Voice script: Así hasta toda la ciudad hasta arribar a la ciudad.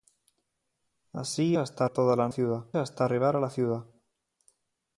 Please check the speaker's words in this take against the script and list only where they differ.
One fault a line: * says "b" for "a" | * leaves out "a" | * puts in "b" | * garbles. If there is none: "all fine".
all fine